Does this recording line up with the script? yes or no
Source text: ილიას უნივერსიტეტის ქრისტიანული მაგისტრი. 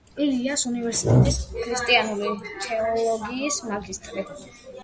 no